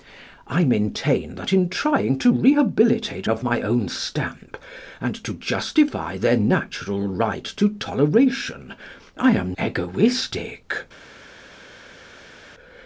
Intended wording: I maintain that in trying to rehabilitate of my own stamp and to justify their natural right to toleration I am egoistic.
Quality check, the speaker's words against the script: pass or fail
pass